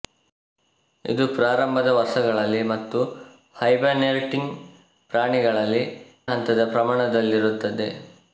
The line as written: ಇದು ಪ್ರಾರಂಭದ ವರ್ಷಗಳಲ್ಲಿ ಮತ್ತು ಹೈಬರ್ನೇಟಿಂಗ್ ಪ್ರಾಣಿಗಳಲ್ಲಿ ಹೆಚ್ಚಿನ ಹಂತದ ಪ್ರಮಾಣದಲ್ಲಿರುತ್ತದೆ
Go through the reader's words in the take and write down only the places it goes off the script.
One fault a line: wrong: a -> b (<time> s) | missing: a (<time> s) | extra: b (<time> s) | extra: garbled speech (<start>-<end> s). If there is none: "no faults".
missing: ಹೆಚ್ಚಿನ (5.8 s)